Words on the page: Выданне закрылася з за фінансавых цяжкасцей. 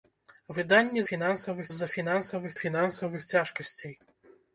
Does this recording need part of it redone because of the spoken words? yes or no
yes